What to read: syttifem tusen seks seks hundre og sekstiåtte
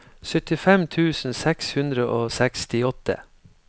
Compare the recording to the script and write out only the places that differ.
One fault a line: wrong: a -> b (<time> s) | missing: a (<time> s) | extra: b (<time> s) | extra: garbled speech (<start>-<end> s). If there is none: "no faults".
missing: seks (1.7 s)